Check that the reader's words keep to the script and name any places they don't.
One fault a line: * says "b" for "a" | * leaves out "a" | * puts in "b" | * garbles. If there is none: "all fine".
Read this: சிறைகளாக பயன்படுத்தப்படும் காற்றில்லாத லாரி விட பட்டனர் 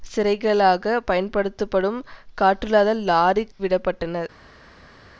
all fine